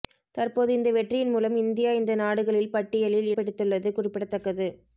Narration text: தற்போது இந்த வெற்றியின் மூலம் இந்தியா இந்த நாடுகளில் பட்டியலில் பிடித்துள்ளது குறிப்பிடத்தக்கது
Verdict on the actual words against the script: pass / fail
pass